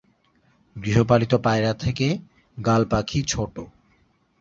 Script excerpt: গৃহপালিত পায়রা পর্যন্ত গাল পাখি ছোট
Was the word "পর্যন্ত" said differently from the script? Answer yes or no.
yes